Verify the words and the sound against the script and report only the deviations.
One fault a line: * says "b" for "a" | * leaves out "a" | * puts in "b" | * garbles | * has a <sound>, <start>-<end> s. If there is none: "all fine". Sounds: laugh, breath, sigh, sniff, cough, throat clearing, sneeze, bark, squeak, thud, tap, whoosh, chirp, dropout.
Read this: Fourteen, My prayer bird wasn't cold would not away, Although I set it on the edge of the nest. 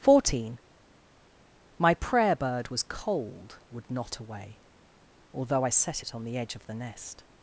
* says "was" for "wasn't"